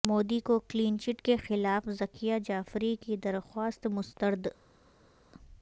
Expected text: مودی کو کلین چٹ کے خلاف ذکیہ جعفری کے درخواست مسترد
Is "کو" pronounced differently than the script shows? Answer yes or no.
no